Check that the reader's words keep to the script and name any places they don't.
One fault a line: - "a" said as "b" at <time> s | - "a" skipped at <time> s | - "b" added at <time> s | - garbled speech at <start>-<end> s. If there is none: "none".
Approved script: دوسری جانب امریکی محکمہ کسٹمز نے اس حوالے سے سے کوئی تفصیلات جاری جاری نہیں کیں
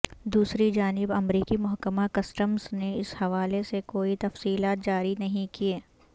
- "سے" skipped at 3.8 s
- "جاری" skipped at 5.1 s